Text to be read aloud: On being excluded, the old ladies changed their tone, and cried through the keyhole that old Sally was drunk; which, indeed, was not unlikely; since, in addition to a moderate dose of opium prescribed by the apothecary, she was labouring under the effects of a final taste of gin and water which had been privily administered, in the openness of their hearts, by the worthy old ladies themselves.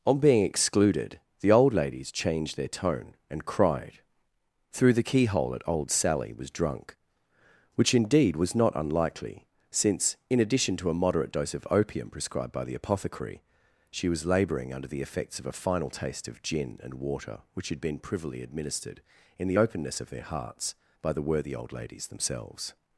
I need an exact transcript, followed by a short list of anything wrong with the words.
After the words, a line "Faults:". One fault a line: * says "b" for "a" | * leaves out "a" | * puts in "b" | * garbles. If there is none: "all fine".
On being excluded, the old ladies changed their tone, and cried through the keyhole at old Sally was drunk; which, indeed, was not unlikely; since, in addition to a moderate dose of opium prescribed by the apothecary, she was labouring under the effects of a final taste of gin and water which had been privily administered, in the openness of their hearts, by the worthy old ladies themselves.
Faults:
* says "at" for "that"